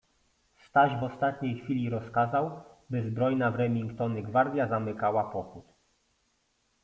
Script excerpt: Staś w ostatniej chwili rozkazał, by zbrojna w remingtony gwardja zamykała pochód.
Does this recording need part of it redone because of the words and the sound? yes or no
no